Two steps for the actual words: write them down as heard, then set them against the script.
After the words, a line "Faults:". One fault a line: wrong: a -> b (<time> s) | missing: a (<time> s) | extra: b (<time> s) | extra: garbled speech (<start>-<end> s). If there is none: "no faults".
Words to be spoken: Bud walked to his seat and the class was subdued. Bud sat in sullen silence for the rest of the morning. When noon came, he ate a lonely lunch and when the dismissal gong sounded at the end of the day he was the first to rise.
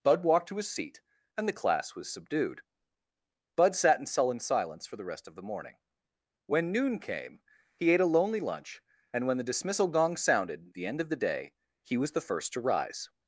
Bud walked to his seat and the class was subdued. Bud sat in sullen silence for the rest of the morning. When noon came, he ate a lonely lunch and when the dismissal gong sounded the end of the day he was the first to rise.
Faults:
missing: at (10.7 s)